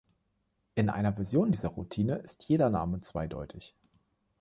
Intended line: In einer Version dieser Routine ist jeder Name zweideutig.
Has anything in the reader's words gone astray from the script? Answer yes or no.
no